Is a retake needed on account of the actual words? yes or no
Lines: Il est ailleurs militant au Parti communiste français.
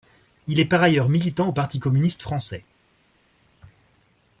yes